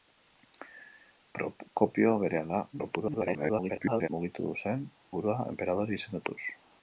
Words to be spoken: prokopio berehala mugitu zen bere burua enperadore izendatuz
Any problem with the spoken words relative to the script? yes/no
yes